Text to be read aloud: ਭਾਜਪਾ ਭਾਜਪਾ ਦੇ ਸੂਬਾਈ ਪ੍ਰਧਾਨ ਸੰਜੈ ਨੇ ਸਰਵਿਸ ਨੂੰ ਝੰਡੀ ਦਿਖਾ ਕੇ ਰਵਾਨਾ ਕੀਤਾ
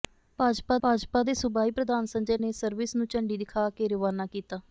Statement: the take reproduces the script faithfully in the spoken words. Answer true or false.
true